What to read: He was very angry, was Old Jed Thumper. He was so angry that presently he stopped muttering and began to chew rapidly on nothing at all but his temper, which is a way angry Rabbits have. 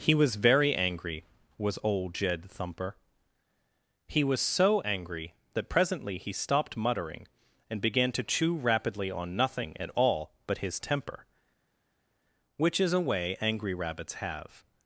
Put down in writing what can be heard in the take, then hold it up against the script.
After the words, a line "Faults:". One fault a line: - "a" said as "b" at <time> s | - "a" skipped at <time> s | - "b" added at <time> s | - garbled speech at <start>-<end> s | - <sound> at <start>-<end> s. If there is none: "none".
He was very angry, was Old Jed Thumper. He was so angry that presently he stopped muttering and began to chew rapidly on nothing at all but his temper, which is a way angry Rabbits have.
Faults:
none